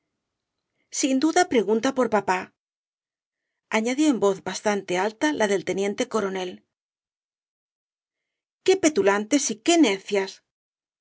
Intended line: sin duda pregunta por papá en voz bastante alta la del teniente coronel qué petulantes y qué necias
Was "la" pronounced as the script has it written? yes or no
yes